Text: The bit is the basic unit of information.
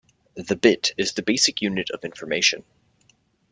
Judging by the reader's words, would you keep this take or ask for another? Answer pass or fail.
pass